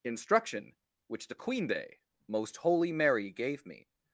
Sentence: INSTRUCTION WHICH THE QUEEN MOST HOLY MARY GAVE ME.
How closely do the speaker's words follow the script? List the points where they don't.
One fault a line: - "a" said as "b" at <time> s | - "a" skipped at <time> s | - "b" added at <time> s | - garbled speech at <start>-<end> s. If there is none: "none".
- "day" added at 1.7 s